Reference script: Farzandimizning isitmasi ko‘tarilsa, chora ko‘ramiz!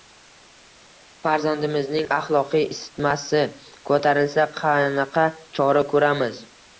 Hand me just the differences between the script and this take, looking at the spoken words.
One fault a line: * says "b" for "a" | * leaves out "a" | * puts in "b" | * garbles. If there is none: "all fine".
* puts in "axloqiy"
* puts in "qanaqa"